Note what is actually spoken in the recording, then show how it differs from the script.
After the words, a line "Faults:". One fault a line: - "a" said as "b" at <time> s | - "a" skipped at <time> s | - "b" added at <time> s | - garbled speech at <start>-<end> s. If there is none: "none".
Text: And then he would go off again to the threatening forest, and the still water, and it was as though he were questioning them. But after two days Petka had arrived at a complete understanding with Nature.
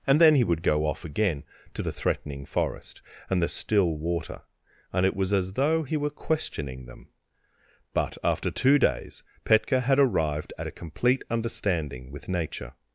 And then he would go off again to the threatening forest, and the still water, and it was as though he were questioning them. But after two days Petka had arrived at a complete understanding with Nature.
Faults:
none